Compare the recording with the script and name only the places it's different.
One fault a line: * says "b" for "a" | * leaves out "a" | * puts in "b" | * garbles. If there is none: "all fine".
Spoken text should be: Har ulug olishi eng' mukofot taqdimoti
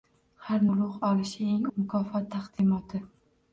all fine